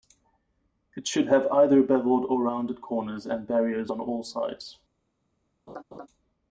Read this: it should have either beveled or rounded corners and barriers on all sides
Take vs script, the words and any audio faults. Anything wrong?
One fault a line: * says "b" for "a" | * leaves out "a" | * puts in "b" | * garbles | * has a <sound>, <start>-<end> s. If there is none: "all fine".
* has a laugh, 5.7-6.1 s